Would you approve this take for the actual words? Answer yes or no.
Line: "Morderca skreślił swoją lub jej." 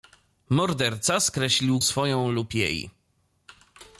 yes